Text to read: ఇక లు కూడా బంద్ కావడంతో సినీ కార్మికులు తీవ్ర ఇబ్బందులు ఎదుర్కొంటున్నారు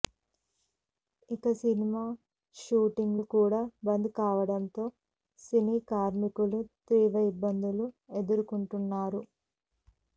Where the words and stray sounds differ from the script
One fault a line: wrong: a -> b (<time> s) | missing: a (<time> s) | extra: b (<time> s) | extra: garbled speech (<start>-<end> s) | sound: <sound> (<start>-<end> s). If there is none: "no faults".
extra: సినిమా షూటింగ్ (1.6 s)